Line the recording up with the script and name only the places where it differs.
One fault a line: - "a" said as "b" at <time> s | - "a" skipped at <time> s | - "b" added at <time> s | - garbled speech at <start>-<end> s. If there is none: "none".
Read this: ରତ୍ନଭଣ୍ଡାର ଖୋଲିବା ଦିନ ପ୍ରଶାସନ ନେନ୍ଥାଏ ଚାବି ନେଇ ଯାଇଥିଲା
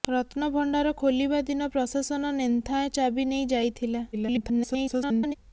- garbled speech at 4.1-5.3 s